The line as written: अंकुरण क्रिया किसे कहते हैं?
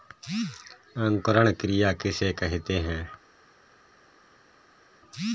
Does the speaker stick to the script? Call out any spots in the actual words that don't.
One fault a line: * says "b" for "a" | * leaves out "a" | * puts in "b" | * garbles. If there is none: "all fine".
all fine